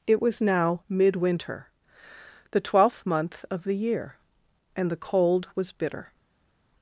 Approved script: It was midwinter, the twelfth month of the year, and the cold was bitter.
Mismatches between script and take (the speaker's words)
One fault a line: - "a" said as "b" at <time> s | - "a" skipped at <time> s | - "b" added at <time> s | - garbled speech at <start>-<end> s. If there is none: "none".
- "now" added at 0.4 s